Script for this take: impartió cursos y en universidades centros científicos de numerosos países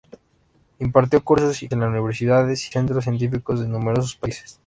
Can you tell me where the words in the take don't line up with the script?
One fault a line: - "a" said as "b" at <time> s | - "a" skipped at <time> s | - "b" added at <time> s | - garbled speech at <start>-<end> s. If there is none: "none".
none